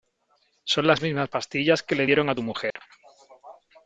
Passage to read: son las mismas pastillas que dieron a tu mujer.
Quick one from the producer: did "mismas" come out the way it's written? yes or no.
yes